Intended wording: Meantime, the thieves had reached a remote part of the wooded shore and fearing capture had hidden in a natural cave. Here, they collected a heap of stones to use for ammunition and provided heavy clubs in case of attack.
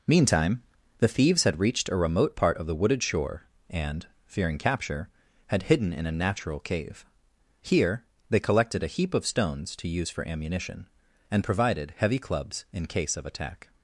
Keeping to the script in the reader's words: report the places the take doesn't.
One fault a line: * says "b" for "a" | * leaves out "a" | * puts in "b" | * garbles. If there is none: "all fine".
all fine